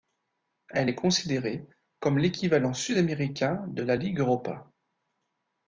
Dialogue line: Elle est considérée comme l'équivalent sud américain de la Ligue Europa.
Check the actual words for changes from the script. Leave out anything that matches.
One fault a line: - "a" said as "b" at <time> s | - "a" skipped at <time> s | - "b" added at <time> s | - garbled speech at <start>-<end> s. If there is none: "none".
none